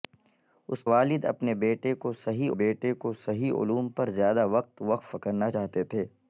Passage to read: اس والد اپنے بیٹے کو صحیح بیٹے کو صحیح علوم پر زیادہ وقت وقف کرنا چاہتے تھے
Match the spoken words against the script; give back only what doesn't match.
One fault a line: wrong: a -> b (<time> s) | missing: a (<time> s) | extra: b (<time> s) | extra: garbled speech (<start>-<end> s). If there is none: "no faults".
no faults